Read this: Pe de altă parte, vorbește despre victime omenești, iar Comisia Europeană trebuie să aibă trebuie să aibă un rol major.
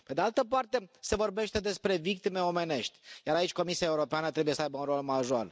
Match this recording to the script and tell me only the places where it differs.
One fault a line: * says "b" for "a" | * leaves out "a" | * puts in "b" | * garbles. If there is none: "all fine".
* puts in "se"
* puts in "aici"
* leaves out "trebuie să aibă"